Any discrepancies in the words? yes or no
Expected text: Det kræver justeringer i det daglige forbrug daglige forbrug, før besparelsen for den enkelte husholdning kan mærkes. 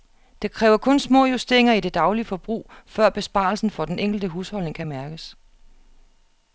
yes